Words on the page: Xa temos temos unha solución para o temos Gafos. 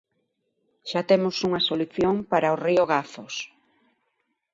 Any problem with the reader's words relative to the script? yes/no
yes